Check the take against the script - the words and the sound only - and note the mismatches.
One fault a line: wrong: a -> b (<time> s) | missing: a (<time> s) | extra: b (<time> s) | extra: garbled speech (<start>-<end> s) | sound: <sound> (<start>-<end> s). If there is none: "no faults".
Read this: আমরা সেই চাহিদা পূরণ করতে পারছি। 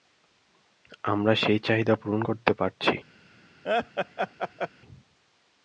sound: laugh (3.6-4.7 s)